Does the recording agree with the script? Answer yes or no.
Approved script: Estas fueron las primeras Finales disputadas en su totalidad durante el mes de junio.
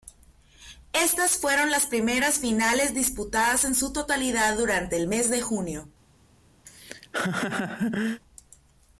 yes